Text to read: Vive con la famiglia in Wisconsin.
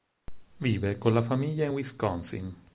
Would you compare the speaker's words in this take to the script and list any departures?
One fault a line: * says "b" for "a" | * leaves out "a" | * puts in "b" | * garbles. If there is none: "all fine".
all fine